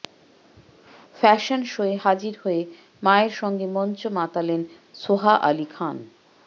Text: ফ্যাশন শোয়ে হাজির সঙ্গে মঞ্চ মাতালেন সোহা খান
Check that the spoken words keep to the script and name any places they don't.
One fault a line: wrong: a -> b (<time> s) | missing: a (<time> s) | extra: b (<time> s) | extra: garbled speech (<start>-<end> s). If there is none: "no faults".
extra: হয়ে মায়ের (2.4 s)
extra: আলি (5.4 s)